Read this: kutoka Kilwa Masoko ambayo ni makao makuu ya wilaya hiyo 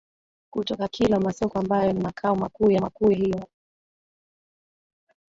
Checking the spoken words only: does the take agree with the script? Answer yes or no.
no